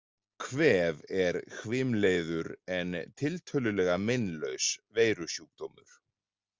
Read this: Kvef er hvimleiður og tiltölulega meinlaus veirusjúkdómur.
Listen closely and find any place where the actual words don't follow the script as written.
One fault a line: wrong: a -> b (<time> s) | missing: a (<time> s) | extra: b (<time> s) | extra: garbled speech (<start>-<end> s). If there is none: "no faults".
wrong: og -> en (2.8 s)